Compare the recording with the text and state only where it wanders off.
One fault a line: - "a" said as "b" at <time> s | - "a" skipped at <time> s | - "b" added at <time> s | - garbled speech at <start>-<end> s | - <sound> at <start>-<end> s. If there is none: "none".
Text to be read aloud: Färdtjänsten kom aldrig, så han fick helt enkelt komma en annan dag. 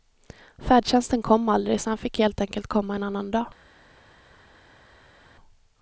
none